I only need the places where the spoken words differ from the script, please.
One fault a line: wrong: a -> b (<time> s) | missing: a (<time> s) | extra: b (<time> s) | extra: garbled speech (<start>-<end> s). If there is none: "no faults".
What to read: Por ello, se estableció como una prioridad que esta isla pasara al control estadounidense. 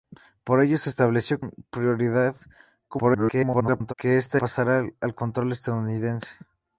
missing: como (1.4 s)
extra: garbled speech (2.9-3.9 s)
missing: isla (4.4 s)